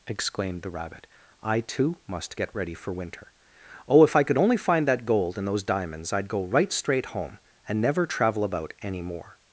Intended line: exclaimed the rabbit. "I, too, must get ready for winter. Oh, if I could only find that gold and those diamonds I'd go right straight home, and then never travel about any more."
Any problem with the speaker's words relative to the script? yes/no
yes